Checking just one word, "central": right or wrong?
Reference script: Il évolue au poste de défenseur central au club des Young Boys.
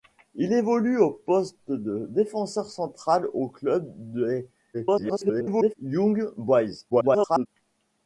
right